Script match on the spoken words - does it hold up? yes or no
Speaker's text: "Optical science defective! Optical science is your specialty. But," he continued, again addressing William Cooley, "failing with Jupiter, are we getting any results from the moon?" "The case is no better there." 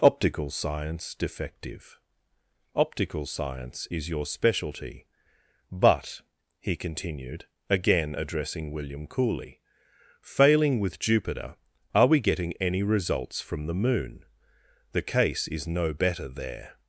yes